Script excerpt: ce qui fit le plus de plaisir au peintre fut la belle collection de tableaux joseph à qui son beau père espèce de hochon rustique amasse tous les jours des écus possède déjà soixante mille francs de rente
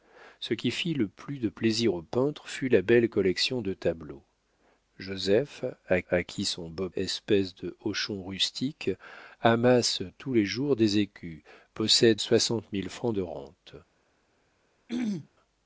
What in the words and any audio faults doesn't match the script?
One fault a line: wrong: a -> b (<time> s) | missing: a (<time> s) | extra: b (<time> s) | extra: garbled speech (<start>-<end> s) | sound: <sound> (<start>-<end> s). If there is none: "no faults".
extra: à (6.1 s)
missing: père (6.9 s)
missing: déjà (12.2 s)
sound: throat clearing (14.9-15.3 s)